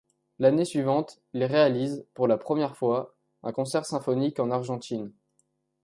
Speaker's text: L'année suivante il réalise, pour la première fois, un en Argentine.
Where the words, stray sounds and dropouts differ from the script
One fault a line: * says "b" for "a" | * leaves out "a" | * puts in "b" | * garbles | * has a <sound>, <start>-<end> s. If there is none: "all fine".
* puts in "concert symphonique"